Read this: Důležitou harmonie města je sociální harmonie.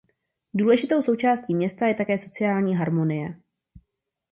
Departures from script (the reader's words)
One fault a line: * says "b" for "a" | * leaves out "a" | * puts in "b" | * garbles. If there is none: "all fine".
* says "součástí" for "harmonie"
* puts in "také"